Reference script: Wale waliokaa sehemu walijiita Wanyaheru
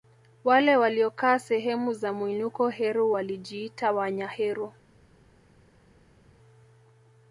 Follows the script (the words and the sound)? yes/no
no